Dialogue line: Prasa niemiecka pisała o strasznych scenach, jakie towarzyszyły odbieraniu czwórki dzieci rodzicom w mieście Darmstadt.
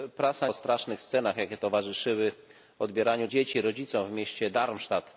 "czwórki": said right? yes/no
no